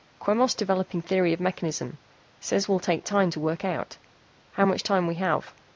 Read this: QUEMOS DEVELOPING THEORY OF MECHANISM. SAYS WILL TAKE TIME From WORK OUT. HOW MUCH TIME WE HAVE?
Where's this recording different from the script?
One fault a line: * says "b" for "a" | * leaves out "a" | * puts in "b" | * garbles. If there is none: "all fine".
* says "TO" for "From"